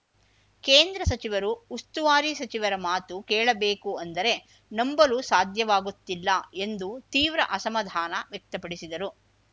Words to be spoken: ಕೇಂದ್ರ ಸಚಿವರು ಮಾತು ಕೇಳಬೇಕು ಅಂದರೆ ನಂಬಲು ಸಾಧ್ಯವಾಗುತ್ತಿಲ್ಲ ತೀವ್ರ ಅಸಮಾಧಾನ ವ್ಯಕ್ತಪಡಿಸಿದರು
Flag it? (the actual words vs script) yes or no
yes